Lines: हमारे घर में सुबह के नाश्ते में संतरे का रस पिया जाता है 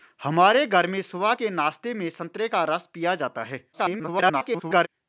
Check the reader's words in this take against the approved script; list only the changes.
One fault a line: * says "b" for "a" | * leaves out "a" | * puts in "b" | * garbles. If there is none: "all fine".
* garbles